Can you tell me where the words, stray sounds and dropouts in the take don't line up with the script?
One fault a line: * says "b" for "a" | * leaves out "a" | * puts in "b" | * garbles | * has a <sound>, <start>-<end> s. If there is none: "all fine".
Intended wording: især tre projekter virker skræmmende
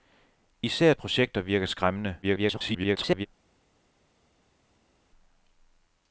* leaves out "tre"
* garbles